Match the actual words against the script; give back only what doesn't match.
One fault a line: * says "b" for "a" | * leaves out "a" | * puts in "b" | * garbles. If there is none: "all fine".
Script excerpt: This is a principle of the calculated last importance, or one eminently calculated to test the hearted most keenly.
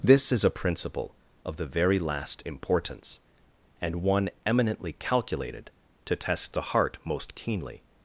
* says "very" for "calculated"
* says "and" for "or"
* says "heart" for "hearted"